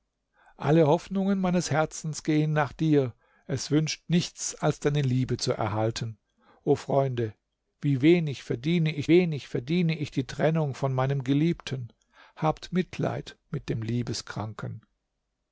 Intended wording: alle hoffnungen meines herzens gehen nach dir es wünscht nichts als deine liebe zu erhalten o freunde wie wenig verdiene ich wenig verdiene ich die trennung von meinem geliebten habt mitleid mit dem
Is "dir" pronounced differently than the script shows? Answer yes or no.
no